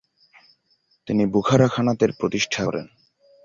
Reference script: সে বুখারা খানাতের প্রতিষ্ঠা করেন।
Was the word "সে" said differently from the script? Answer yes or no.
yes